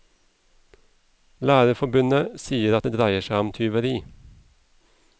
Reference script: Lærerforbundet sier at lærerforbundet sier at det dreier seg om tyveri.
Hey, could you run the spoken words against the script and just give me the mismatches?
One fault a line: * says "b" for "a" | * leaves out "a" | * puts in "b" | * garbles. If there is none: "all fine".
* leaves out "lærerforbundet sier at"